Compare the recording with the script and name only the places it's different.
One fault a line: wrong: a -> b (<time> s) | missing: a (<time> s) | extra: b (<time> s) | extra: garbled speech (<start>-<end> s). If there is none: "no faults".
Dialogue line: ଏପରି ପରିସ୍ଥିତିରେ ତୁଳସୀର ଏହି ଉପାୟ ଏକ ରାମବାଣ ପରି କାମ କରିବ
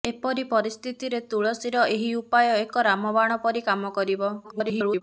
extra: garbled speech (4.4-5.0 s)